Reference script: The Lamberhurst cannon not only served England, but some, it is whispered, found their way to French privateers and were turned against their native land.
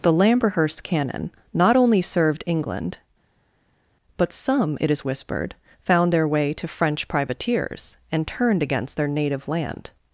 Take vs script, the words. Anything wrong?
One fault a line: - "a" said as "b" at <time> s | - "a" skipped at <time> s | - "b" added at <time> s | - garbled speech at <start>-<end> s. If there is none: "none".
- "were" skipped at 8.3 s